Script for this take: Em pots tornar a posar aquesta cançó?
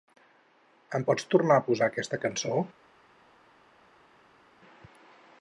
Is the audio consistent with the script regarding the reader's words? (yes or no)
yes